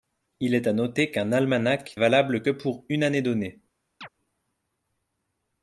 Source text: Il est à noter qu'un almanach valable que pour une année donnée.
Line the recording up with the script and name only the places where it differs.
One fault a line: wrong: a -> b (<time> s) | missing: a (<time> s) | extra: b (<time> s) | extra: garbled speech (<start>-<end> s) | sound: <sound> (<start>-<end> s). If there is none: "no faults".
sound: chirp (4.0-4.1 s)